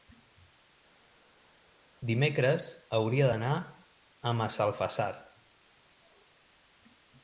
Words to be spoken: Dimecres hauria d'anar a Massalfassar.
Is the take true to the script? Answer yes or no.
yes